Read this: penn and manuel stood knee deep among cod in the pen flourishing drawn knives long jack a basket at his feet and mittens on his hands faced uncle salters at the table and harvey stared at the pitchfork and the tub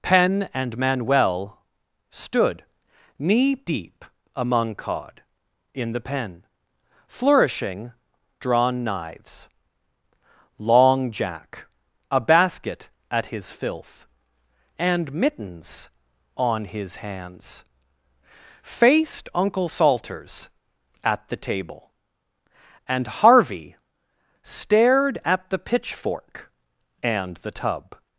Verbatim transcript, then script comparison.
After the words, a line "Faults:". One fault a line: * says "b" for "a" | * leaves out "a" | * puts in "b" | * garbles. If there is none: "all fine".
penn and manuel stood knee deep among cod in the pen flourishing drawn knives long jack a basket at his filth and mittens on his hands faced uncle salters at the table and harvey stared at the pitchfork and the tub
Faults:
* says "filth" for "feet"